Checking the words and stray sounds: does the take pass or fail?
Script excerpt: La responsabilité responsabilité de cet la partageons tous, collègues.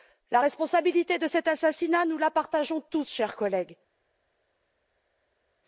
fail